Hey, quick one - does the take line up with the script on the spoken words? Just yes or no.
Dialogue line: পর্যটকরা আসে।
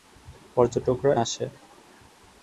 yes